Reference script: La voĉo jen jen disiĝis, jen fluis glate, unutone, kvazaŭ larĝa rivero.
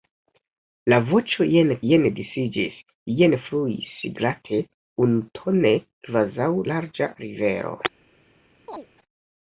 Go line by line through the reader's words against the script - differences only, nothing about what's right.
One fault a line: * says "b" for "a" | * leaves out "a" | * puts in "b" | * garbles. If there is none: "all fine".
all fine